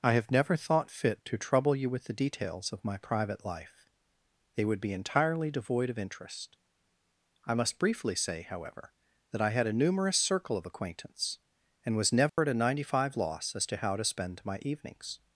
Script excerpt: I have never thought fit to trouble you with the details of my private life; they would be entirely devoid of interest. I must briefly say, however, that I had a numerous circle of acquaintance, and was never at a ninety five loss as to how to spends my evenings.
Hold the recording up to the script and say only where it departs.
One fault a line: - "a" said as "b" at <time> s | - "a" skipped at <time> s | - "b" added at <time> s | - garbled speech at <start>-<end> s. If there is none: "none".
- "spends" said as "spend" at 14.0 s